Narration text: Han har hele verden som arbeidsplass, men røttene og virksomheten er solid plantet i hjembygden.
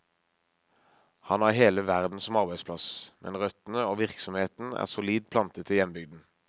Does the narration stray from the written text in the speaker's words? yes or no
no